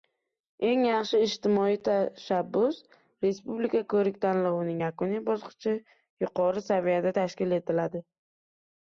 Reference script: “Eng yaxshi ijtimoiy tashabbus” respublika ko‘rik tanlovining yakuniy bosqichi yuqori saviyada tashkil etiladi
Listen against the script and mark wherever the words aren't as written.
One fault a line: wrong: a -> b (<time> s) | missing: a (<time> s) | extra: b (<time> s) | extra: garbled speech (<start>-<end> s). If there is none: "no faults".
no faults